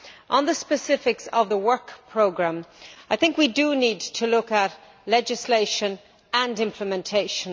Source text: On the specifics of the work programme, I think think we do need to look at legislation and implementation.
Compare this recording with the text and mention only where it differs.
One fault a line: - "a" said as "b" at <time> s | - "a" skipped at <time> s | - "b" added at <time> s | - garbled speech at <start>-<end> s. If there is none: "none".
- "think" skipped at 3.4 s